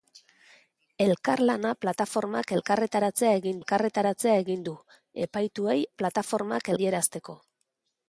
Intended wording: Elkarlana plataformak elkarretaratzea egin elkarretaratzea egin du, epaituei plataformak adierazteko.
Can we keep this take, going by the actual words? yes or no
yes